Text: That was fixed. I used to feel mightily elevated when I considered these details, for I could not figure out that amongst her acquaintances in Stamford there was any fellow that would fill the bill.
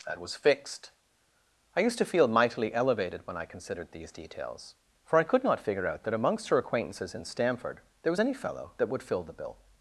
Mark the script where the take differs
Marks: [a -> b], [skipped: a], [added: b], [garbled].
That was fixed. I used to feel mightily elevated when I considered these details, for I could not figure out that amongst her acquaintances in Stamford there was any fellow that would fill the bill.